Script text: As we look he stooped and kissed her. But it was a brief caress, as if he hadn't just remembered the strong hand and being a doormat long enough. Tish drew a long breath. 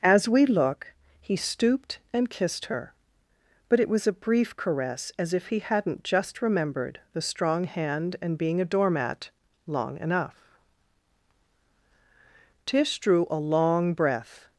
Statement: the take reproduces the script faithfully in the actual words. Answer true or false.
true